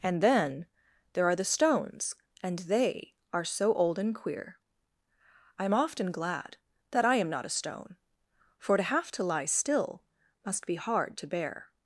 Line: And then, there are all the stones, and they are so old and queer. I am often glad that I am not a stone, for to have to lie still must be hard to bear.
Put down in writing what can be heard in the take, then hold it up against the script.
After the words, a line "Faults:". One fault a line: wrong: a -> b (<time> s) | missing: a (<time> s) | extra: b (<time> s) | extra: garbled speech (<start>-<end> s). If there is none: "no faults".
And then, there are the stones, and they are so old and queer. I am often glad that I am not a stone, for to have to lie still must be hard to bear.
Faults:
missing: all (1.4 s)